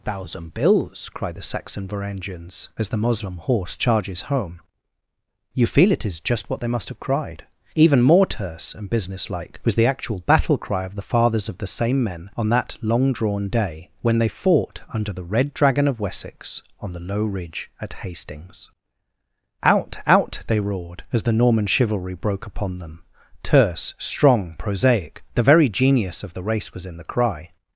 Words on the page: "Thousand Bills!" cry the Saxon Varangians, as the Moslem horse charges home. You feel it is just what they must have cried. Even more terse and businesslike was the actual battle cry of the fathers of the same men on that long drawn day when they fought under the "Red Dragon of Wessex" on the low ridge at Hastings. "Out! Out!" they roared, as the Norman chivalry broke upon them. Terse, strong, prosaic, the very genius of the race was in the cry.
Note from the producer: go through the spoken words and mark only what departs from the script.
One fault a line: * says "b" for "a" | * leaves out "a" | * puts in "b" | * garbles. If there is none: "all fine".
all fine